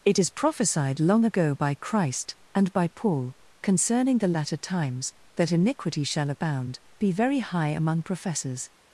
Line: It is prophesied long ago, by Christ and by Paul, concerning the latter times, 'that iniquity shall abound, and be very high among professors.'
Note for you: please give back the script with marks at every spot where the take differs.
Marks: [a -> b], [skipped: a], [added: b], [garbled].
It is prophesied long ago, by Christ and by Paul, concerning the latter times, 'that iniquity shall abound, [skipped: and] be very high among professors.'